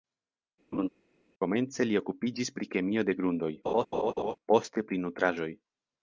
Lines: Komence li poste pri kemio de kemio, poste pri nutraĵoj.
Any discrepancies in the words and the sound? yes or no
yes